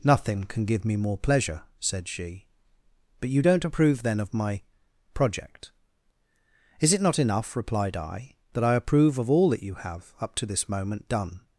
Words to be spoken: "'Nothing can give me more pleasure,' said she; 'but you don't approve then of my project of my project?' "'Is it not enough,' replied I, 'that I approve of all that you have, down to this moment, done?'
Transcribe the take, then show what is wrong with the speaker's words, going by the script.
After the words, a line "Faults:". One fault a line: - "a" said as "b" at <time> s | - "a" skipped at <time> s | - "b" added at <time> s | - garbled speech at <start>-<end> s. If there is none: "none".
"'Nothing can give me more pleasure,' said she; 'but you don't approve then of my project?' "'Is it not enough,' replied I, 'that I approve of all that you have, up to this moment, done?'
Faults:
- "of my project" skipped at 5.7 s
- "down" said as "up" at 10.2 s